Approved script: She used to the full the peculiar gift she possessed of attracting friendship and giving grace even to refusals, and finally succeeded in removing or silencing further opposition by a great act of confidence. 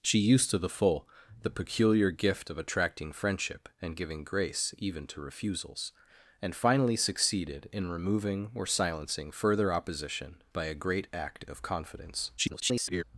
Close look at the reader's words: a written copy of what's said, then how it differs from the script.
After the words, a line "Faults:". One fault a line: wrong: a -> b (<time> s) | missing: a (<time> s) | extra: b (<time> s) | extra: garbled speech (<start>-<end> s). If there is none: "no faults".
She used to the full the peculiar gift of attracting friendship and giving grace even to refusals, and finally succeeded in removing or silencing further opposition by a great act of confidence. [garbled]
Faults:
missing: she possessed (2.5 s)
extra: garbled speech (12.4-13.0 s)